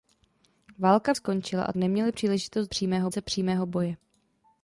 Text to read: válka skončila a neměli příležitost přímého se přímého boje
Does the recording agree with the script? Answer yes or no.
yes